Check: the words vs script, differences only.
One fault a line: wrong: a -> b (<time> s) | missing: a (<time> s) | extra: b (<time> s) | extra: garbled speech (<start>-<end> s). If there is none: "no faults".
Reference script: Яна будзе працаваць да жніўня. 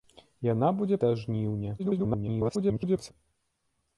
missing: працаваць (1.0 s)
extra: garbled speech (1.8-3.1 s)